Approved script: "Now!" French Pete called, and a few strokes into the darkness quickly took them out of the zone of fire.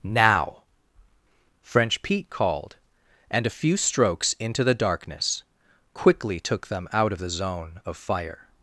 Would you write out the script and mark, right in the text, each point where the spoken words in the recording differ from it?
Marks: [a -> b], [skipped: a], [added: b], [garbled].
"Now!" French Pete called, and a few strokes into the darkness quickly took them out of the zone of fire.